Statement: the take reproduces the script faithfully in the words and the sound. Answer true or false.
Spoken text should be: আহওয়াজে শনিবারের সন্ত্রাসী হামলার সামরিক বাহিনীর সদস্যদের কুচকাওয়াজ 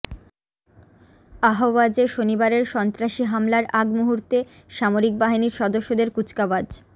false